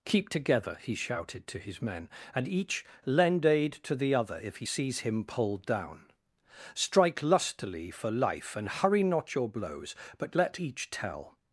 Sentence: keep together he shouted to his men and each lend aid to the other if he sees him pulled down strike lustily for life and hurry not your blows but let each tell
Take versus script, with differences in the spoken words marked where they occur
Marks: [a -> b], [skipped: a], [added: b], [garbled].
keep together he shouted to his men and each lend aid to the other if he sees him pulled down strike lustily for life and hurry not your blows but let each tell